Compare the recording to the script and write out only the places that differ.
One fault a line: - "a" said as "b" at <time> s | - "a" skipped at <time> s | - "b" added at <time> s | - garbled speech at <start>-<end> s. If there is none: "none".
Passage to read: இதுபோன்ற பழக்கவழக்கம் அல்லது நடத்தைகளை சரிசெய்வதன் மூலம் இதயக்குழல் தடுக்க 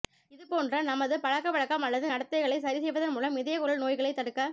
- "நமது" added at 0.8 s
- "நோய்களைத்" added at 3.8 s